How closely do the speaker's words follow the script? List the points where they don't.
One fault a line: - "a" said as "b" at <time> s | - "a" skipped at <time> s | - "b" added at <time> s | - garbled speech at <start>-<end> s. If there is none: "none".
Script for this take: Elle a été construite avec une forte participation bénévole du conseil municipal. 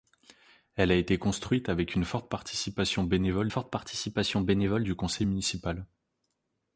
- "forte participation bénévole" added at 3.5 s